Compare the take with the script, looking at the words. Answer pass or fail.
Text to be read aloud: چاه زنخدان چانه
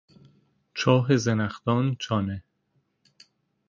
pass